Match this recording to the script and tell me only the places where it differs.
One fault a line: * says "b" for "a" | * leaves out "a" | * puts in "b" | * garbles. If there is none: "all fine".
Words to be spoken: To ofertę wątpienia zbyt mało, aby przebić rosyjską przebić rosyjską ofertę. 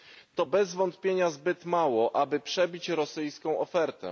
* says "bez" for "ofertę"
* leaves out "przebić rosyjską"